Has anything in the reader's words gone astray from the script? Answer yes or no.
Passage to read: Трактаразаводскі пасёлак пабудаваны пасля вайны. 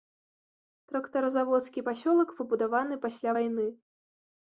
no